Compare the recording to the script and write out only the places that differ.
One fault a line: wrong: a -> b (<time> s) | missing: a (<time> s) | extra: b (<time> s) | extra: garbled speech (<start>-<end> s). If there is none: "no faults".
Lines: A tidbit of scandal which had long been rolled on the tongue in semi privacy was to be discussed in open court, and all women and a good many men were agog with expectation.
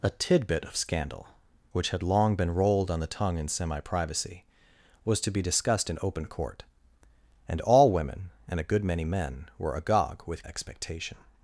no faults